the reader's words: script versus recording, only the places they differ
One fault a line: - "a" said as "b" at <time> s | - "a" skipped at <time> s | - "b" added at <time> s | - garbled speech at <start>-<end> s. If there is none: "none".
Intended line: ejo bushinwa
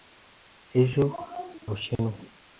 none